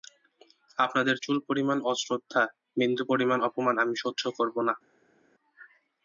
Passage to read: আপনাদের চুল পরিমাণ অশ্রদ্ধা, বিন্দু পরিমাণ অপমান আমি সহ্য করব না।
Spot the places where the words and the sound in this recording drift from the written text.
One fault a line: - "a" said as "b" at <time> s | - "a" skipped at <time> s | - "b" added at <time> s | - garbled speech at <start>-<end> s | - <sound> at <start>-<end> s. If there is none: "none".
none